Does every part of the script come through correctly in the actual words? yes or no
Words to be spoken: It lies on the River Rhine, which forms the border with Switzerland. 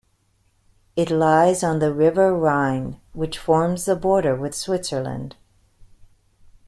yes